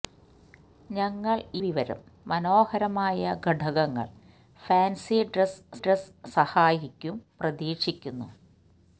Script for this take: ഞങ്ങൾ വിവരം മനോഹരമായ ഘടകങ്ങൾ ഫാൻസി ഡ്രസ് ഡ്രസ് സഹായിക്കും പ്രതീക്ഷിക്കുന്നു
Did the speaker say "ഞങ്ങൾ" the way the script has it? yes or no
yes